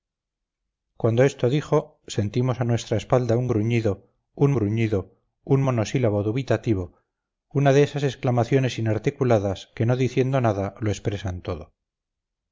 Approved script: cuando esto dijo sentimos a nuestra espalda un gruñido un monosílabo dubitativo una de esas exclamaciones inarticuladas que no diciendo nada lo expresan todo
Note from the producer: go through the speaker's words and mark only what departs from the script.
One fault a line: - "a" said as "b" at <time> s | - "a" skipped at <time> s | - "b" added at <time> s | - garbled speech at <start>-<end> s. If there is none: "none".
- "gruñido un" added at 4.5 s